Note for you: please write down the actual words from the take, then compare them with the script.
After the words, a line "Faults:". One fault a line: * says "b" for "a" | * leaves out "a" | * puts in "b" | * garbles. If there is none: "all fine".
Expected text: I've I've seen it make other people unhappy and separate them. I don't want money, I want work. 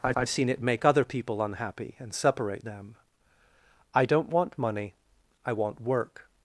I've I've seen it make other people unhappy and separate them. I don't want money, I want work.
Faults:
all fine